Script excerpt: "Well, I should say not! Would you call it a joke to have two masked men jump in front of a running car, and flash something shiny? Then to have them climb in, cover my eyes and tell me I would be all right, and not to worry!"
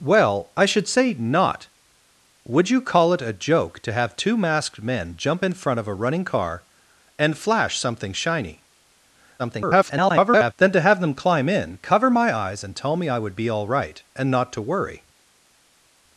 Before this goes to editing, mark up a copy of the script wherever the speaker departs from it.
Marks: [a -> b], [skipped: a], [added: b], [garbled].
"Well, I should say not! Would you call it a joke to have two masked men jump in front of a running car, and flash something shiny? [garbled] Then to have them climb in, cover my eyes and tell me I would be all right, and not to worry!"